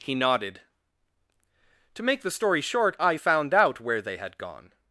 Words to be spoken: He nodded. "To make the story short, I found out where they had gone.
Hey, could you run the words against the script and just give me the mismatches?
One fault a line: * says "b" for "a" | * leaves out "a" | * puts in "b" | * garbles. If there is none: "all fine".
all fine